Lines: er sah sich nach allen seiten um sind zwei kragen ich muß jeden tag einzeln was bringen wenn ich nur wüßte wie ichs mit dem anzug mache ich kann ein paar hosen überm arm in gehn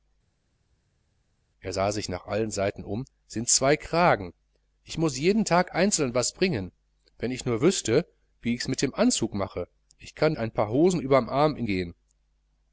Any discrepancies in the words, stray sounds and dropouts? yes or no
no